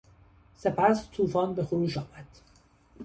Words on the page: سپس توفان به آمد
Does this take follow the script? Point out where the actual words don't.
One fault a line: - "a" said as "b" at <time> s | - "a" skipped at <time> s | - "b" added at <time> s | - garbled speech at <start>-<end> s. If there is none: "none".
- "خروش" added at 1.6 s